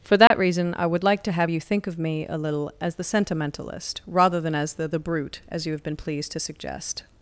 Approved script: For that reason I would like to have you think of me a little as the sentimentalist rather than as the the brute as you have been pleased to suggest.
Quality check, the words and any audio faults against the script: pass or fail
fail